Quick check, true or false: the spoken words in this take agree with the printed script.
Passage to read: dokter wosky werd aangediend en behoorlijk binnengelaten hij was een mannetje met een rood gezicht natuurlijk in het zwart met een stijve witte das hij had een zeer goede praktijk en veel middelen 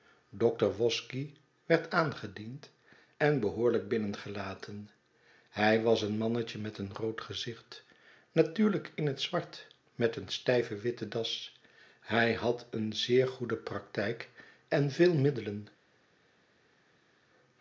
true